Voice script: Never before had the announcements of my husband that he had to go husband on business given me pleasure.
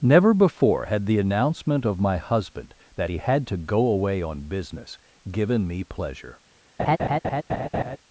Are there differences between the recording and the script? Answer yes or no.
yes